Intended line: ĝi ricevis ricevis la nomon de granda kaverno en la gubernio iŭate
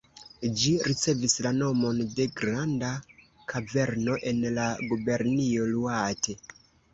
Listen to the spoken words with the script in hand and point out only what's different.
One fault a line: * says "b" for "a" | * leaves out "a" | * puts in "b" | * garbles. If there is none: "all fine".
* leaves out "ricevis"